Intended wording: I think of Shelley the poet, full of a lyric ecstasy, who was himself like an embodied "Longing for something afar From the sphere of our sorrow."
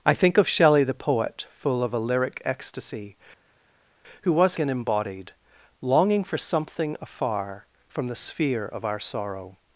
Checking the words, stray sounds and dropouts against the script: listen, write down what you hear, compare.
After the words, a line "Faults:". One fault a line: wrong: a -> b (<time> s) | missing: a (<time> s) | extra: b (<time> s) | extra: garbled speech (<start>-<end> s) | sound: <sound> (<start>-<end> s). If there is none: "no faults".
I think of Shelley the poet, full of a lyric ecstasy, who was an embodied "Longing for something afar From the sphere of our sorrow."
Faults:
missing: himself like (4.6 s)